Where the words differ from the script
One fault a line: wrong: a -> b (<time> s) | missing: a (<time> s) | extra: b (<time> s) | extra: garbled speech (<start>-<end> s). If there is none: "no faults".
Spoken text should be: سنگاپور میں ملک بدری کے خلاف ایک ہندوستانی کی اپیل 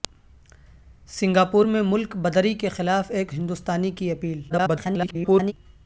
extra: garbled speech (4.5-5.5 s)